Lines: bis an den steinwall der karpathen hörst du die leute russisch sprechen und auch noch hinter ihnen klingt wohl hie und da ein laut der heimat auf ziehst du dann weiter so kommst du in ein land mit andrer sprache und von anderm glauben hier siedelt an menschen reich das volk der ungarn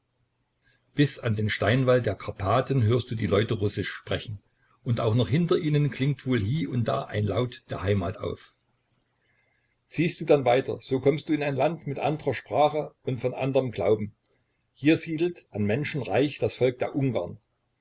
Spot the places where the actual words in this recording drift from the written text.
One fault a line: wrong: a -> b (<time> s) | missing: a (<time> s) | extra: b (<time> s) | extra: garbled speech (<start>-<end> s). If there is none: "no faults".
no faults